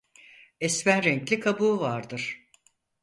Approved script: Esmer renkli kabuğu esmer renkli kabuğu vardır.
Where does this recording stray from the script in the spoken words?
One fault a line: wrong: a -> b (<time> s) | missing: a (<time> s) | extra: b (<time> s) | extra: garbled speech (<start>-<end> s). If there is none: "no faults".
missing: esmer renkli kabuğu (1.8 s)